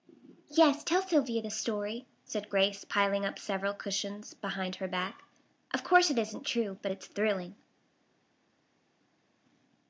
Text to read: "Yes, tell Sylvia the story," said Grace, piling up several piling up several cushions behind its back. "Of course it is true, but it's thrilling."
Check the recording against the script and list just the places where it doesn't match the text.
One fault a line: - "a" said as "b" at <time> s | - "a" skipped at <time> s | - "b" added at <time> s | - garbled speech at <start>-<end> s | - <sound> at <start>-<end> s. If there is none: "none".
- "piling up several" skipped at 3.8 s
- "its" said as "her" at 4.8 s
- "is" said as "isn't" at 6.2 s